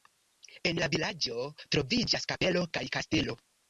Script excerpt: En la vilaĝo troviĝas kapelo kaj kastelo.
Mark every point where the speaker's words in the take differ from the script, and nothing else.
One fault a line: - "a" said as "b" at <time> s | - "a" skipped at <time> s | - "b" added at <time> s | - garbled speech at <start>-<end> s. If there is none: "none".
none